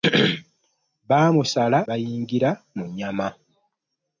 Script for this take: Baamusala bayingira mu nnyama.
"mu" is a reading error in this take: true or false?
false